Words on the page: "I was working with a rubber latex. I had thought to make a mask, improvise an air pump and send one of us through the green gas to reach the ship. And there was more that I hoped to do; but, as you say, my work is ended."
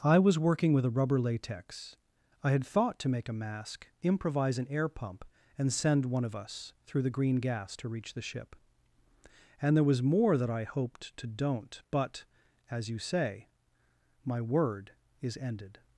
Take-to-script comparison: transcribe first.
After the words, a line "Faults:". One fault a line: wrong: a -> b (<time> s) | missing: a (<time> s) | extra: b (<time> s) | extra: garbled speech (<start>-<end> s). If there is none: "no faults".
"I was working with a rubber latex. I had thought to make a mask, improvise an air pump and send one of us through the green gas to reach the ship. And there was more that I hoped to don't; but, as you say, my word is ended."
Faults:
wrong: do -> don't (11.3 s)
wrong: work -> word (14.4 s)